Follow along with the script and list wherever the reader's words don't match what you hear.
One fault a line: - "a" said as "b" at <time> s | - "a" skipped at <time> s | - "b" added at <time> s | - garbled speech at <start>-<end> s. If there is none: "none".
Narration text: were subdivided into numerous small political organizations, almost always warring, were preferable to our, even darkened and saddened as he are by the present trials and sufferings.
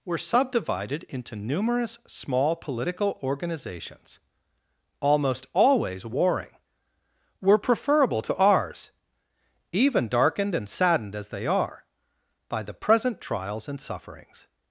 - "our" said as "ours" at 8.3 s
- "he" said as "they" at 11.3 s